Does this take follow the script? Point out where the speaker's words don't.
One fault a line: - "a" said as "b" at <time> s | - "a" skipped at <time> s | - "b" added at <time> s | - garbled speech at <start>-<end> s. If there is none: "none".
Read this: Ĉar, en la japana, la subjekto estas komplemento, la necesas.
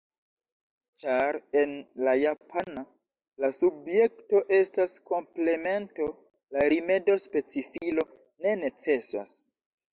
- "rimedo specifilo ne" added at 6.8 s